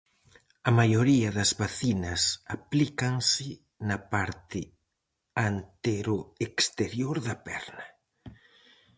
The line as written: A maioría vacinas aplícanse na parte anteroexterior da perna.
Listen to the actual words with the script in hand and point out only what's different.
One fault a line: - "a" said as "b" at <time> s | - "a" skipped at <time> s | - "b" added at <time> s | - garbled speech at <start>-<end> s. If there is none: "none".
- "das" added at 1.4 s